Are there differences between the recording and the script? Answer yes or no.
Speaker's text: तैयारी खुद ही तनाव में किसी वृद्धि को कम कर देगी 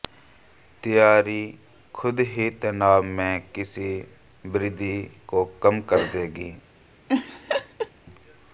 no